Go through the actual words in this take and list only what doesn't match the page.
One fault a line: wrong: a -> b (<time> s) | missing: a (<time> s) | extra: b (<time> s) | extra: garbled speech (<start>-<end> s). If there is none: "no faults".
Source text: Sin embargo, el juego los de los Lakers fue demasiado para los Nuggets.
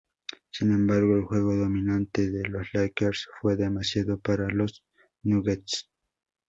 wrong: los -> dominante (1.6 s)